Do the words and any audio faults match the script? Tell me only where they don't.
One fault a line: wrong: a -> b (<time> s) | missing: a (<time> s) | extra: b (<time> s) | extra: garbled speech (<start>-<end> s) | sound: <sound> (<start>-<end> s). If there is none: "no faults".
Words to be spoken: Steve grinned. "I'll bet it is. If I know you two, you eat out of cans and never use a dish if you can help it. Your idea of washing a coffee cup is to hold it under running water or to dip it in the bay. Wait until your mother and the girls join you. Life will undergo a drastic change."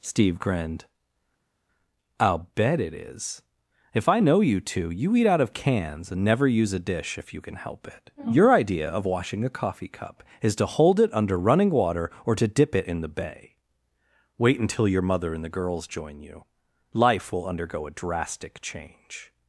no faults